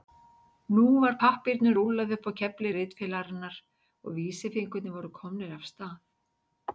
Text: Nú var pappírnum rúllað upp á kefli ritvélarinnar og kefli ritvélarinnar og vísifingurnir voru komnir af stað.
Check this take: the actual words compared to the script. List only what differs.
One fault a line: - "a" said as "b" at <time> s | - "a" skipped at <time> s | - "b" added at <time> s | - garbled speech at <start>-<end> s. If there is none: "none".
- "kefli ritvélarinnar og" skipped at 4.2 s